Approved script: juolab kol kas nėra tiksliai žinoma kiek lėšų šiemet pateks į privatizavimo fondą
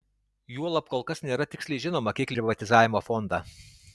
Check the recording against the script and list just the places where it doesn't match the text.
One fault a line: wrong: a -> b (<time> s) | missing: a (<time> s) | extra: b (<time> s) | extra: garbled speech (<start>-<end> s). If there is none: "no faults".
missing: lėšų šiemet pateks (2.4 s)